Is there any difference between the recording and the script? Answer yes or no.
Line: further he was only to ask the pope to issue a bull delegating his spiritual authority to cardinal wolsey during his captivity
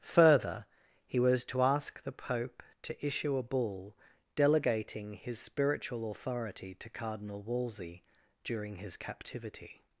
yes